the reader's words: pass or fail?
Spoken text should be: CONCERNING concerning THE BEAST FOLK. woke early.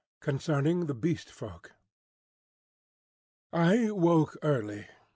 fail